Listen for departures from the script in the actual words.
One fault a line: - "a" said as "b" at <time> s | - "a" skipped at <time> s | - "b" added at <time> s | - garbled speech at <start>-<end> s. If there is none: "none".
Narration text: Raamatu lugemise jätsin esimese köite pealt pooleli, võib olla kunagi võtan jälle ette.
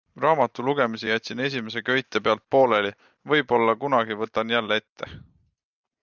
none